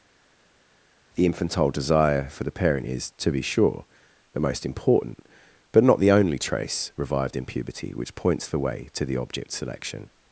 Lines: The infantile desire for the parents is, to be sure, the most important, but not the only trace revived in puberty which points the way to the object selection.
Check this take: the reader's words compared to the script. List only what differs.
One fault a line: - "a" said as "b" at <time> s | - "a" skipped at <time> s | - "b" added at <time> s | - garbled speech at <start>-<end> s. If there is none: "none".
- "parents" said as "parent" at 2.5 s